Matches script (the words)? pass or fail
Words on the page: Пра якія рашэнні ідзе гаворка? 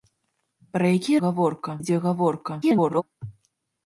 fail